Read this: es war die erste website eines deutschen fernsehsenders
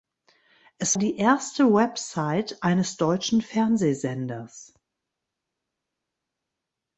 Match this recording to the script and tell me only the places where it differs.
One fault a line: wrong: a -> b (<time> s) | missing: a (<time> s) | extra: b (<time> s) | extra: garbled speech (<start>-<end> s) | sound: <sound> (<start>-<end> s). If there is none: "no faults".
missing: war (1.0 s)